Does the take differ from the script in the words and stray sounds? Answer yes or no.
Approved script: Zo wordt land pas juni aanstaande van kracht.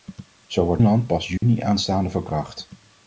yes